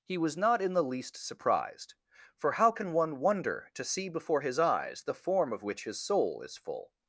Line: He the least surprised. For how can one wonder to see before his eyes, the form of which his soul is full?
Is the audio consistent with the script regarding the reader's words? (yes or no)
no